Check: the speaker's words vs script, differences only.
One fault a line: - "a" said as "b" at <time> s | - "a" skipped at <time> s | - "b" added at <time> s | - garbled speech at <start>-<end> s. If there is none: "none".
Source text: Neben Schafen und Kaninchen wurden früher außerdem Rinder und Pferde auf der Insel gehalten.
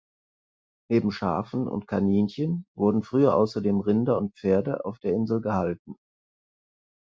none